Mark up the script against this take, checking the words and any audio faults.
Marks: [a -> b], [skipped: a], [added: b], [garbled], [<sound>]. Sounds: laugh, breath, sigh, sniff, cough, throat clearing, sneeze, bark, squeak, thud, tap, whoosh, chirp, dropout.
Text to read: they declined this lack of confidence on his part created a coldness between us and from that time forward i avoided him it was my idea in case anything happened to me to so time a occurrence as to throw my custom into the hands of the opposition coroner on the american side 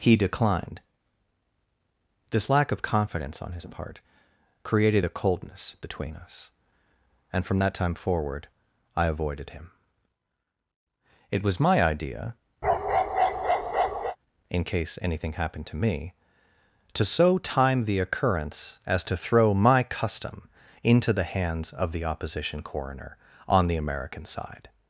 [they -> he] declined this lack of confidence on his part created a coldness between us and from that time forward i avoided him it was my idea [bark] in case anything happened to me to so time [a -> the] occurrence as to throw my custom into the hands of the opposition coroner on the american side